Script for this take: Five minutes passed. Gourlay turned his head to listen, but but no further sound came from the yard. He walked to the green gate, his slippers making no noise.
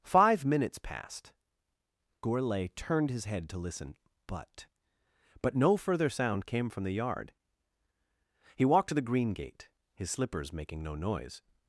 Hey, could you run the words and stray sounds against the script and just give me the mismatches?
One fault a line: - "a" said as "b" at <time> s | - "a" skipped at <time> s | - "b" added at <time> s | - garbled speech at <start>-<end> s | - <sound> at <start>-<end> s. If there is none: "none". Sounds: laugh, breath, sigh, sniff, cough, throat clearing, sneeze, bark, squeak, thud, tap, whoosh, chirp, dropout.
none